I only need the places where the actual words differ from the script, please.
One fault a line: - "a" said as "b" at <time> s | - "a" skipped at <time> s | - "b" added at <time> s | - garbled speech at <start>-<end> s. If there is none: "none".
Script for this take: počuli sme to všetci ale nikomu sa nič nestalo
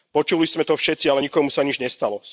none